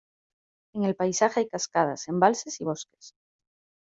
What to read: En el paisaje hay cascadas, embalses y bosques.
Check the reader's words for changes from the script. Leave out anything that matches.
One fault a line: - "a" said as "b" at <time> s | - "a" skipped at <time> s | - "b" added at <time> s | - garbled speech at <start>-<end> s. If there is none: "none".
none